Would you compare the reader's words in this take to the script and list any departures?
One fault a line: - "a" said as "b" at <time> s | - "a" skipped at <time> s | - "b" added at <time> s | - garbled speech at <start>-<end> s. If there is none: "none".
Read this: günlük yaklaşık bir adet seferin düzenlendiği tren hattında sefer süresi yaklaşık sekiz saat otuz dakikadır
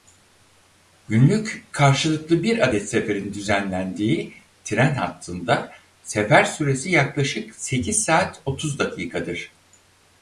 - "yaklaşık" said as "karşılıklı" at 1.7 s